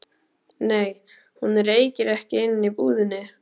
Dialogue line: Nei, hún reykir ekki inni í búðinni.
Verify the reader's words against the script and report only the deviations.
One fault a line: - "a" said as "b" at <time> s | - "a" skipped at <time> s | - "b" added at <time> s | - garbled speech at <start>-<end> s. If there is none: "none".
none